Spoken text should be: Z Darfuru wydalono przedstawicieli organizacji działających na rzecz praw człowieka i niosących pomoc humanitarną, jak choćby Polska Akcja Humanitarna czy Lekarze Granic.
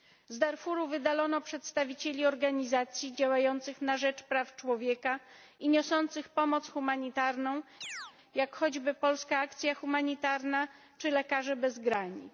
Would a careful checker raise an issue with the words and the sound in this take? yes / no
yes